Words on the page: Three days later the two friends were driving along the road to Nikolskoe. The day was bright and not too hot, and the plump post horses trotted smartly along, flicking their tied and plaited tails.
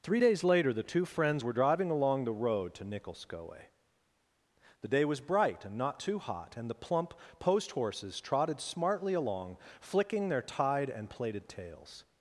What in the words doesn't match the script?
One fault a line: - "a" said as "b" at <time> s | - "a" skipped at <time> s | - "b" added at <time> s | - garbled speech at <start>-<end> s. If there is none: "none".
none